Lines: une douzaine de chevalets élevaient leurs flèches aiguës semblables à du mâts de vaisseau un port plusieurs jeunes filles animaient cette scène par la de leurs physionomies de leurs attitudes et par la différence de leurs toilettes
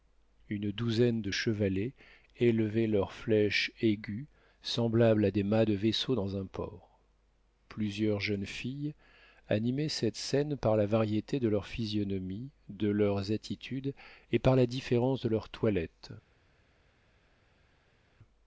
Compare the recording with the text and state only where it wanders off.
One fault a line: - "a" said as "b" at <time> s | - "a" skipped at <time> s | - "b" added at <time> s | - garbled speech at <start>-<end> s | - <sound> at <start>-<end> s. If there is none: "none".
- "du" said as "des" at 5.3 s
- "dans" added at 6.2 s
- "variété" added at 10.9 s